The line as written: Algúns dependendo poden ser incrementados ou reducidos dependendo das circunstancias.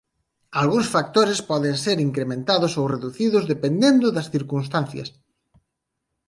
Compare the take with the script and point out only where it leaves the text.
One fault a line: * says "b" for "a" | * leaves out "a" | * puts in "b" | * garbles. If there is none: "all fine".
* says "factores" for "dependendo"